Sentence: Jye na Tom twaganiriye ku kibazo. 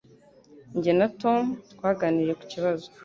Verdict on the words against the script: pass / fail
pass